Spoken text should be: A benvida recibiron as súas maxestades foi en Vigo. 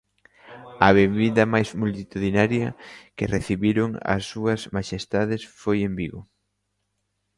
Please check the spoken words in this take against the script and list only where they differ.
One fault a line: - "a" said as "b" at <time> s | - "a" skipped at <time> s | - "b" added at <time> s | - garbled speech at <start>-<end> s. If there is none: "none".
- "máis multitudinaria que" added at 1.5 s